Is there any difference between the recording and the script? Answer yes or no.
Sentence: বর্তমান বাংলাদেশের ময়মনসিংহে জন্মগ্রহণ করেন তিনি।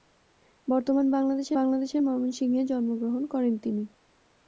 yes